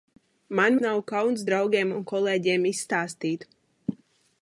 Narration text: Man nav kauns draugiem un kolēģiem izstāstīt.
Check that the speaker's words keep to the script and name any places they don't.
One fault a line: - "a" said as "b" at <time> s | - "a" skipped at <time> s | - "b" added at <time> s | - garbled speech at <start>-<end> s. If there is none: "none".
none